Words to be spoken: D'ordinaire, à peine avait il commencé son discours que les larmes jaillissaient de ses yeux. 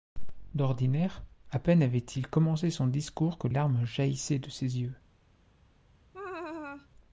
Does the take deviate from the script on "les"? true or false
true